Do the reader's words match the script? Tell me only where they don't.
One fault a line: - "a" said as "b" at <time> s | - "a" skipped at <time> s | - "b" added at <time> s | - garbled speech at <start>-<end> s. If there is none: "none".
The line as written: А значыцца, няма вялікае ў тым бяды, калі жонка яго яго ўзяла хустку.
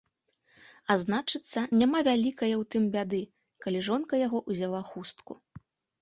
- "яго" skipped at 4.4 s